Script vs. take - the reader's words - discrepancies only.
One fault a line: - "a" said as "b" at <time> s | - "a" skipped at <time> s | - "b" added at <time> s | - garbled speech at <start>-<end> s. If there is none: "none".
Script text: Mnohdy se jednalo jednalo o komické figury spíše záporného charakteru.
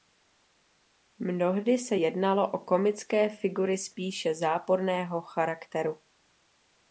- "jednalo" skipped at 2.5 s